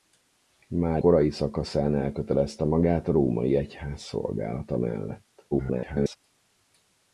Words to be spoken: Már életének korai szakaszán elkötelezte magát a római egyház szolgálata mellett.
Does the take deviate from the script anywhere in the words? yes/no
yes